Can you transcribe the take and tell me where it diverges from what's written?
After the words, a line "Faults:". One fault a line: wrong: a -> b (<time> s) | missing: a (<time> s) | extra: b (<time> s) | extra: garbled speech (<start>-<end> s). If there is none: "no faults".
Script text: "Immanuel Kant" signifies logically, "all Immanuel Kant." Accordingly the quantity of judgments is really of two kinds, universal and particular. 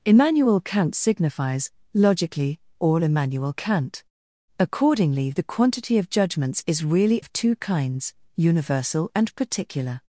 "Immanuel Kant" signifies logically, "all Immanuel Kant." Accordingly the quantity of judgments is really of two kinds, universal and particular.
Faults:
no faults